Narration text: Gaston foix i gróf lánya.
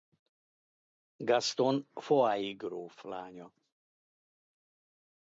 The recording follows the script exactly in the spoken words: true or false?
true